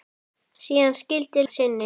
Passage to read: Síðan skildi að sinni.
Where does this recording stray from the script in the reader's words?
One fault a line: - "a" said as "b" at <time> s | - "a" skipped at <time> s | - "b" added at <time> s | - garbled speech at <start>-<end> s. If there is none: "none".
none